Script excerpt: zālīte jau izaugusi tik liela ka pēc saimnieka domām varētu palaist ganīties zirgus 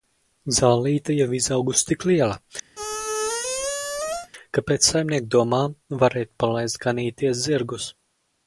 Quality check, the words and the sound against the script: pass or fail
fail